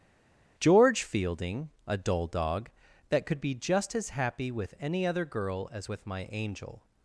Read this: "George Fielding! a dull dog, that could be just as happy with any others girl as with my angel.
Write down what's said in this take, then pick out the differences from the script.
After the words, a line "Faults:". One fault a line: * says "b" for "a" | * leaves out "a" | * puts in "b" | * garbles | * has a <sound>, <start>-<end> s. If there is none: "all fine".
"George Fielding! a dull dog, that could be just as happy with any other girl as with my angel.
Faults:
* says "other" for "others"